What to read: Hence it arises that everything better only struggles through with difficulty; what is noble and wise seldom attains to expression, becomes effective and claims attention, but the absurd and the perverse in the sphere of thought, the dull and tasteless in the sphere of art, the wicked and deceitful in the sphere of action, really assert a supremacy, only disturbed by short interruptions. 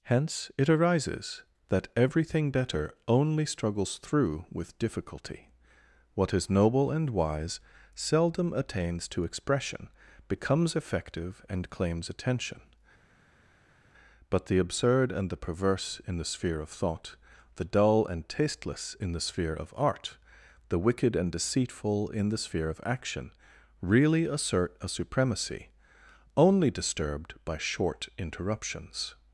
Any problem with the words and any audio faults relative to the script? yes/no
no